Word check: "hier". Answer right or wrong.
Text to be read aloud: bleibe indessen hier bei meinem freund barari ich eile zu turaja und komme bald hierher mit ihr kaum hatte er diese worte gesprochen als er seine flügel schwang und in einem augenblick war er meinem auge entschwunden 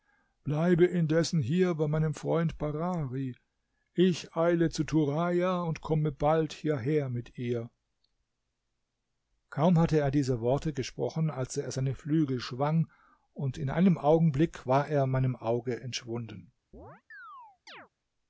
right